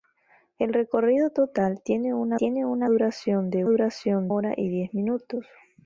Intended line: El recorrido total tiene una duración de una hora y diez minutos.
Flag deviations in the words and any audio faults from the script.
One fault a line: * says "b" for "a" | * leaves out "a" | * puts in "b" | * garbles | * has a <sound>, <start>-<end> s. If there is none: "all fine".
* puts in "tiene una"
* says "duración" for "una"